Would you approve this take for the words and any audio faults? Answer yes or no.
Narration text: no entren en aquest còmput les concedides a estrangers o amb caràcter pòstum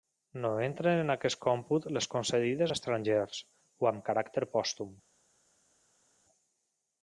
yes